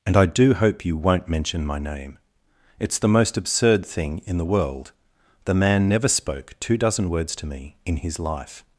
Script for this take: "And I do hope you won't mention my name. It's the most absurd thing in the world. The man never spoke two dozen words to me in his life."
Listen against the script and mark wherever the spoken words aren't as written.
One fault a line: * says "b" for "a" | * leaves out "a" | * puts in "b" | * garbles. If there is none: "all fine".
all fine